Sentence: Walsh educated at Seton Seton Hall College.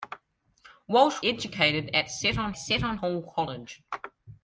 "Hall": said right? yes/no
yes